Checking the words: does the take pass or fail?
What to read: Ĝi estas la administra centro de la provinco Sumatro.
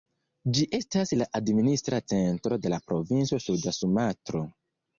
fail